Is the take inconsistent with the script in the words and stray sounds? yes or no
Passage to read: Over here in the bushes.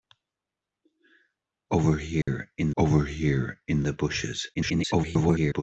yes